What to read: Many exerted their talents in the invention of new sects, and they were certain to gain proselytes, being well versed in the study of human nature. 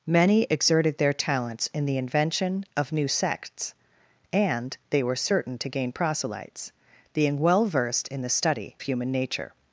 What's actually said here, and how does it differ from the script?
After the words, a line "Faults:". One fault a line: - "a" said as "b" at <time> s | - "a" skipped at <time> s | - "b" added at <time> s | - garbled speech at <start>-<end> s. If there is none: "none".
Many exerted their talents in the invention of new sects, and they were certain to gain proselytes, being well versed in the study human nature.
Faults:
- "of" skipped at 8.8 s